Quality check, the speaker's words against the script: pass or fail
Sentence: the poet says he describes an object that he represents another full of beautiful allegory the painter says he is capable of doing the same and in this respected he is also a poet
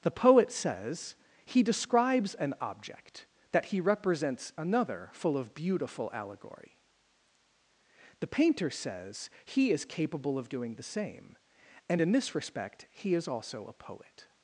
fail